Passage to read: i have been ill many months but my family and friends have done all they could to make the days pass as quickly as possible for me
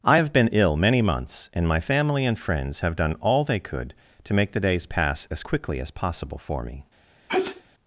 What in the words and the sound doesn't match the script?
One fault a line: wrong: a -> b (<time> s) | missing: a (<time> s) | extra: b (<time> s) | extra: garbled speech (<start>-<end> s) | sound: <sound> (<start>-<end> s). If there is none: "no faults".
wrong: but -> and (1.5 s)
sound: sneeze (7.3-7.6 s)